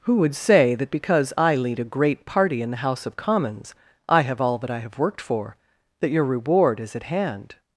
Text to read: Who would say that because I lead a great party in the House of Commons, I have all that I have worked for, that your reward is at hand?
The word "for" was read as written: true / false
true